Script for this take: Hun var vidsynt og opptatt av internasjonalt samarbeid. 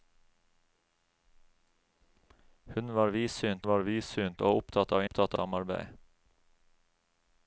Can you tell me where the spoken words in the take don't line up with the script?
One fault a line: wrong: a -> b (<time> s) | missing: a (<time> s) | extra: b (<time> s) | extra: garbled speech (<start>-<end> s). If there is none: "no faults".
extra: var vidsynt (3.7 s)
wrong: internasjonalt -> opptatt (5.0 s)